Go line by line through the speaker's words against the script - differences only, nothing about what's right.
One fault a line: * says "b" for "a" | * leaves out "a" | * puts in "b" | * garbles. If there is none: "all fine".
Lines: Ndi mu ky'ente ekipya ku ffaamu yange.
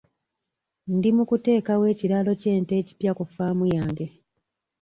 * puts in "kuteekawo ekiraalo"